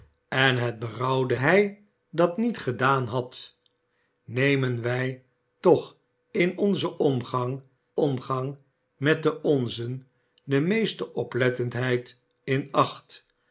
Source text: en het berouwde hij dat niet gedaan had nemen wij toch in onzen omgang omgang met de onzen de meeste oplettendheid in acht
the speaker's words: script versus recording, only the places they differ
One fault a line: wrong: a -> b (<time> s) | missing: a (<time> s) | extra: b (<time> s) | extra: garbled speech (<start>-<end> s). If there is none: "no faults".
no faults